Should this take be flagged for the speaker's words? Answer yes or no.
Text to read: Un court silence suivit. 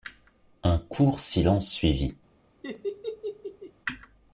no